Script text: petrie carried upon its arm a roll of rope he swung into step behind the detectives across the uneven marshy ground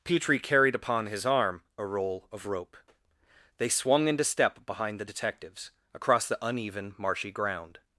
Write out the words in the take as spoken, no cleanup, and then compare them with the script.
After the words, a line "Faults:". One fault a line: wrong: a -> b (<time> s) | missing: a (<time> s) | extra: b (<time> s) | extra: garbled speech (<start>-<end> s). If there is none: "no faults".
petrie carried upon his arm a roll of rope they swung into step behind the detectives across the uneven marshy ground
Faults:
wrong: its -> his (1.1 s)
wrong: he -> they (3.6 s)